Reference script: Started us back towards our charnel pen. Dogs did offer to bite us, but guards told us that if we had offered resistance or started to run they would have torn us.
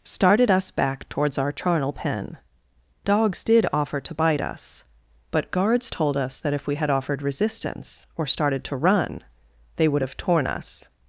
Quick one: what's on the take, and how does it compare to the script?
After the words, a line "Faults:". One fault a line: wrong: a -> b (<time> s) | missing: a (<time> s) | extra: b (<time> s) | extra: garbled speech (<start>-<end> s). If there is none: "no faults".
Started us back towards our charnel pen. Dogs did offer to bite us, but guards told us that if we had offered resistance or started to run they would have torn us.
Faults:
no faults